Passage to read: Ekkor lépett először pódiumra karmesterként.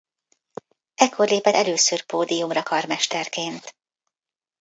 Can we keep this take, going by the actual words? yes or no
yes